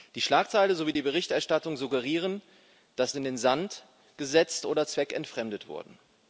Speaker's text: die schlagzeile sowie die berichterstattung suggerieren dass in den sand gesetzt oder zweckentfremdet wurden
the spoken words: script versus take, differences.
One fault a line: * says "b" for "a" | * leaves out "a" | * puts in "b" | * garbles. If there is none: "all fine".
all fine